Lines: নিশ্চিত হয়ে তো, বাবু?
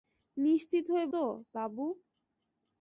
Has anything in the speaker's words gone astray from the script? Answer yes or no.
no